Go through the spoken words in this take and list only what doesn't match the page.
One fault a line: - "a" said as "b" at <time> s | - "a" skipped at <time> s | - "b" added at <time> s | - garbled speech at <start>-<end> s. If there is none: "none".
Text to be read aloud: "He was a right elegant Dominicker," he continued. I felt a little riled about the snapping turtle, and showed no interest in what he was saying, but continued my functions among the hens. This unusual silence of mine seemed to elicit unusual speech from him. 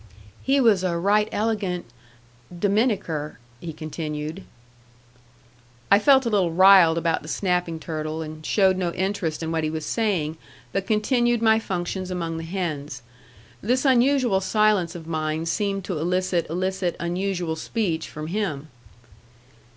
- "elicit" added at 16.5 s